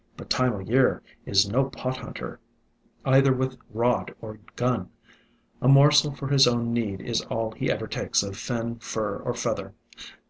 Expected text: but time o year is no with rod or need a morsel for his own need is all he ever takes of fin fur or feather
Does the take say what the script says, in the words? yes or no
no